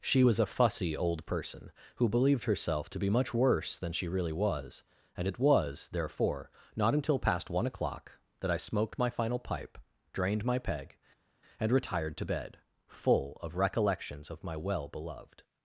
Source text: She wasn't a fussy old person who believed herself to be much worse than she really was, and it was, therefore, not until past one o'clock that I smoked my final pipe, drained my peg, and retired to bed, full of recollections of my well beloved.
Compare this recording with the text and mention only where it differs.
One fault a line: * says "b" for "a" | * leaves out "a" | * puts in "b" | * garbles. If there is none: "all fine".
* says "was" for "wasn't"